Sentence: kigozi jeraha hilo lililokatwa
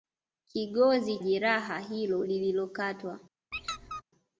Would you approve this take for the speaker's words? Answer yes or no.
yes